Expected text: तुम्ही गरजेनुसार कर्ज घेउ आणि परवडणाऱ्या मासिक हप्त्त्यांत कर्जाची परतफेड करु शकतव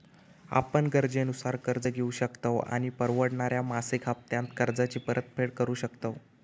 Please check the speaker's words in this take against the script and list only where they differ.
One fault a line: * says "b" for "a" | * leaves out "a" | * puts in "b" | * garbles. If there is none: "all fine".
* says "आपण" for "तुम्ही"
* puts in "शकतव"